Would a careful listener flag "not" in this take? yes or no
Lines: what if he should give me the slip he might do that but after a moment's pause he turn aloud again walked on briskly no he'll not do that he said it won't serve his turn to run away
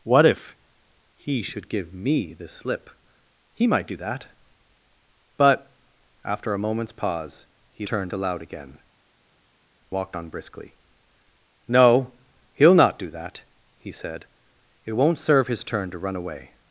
no